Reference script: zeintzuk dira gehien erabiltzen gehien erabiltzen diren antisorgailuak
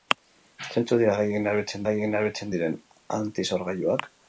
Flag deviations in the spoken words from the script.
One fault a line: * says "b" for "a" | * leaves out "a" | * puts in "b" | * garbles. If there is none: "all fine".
all fine